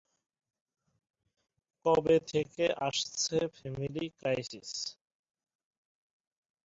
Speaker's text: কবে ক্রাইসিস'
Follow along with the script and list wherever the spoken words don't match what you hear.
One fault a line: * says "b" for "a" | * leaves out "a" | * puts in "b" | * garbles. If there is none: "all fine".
* puts in "থেকে আসছে ফ্যামিলি"